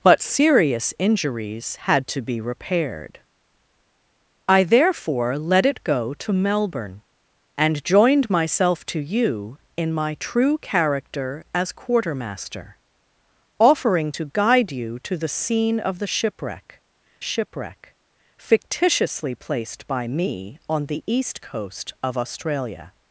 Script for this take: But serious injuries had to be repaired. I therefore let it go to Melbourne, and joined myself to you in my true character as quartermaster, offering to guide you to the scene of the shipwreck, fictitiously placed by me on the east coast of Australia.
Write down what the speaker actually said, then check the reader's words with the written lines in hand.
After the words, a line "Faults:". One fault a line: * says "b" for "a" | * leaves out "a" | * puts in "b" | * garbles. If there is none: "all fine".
But serious injuries had to be repaired. I therefore let it go to Melbourne, and joined myself to you in my true character as quartermaster, offering to guide you to the scene of the shipwreck shipwreck, fictitiously placed by me on the east coast of Australia.
Faults:
* puts in "shipwreck"